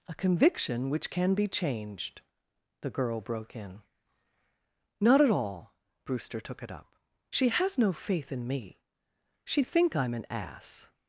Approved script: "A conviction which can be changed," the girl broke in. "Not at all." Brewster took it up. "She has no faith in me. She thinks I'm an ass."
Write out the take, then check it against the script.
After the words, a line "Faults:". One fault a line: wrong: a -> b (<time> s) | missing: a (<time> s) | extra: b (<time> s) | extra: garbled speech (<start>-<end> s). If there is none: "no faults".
"A conviction which can be changed," the girl broke in. "Not at all." Brewster took it up. "She has no faith in me. She think I'm an ass."
Faults:
wrong: thinks -> think (9.6 s)